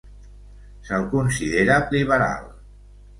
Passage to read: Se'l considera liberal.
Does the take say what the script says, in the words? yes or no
yes